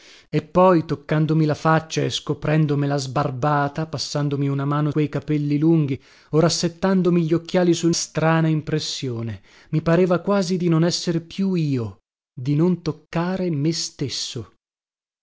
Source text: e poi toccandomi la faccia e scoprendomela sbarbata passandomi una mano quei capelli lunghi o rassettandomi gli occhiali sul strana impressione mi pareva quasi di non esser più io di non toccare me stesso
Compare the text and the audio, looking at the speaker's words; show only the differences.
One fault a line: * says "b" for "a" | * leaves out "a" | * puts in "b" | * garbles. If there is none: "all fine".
all fine